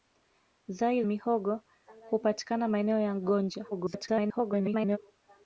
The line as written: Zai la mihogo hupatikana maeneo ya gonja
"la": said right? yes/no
no